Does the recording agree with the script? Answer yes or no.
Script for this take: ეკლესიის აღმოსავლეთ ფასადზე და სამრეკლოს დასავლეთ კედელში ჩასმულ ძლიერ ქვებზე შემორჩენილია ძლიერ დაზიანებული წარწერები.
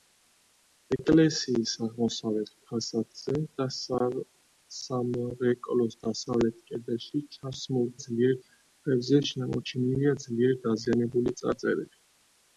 yes